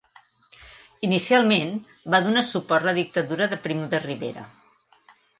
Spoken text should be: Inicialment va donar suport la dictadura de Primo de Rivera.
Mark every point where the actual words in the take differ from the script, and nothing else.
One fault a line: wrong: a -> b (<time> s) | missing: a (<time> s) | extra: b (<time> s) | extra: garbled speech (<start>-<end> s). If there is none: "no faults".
no faults